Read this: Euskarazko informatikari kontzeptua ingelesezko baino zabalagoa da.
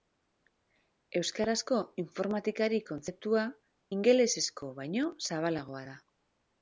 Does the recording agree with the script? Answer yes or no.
yes